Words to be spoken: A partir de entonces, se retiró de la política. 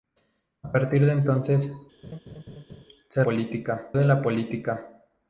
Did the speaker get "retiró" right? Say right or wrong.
wrong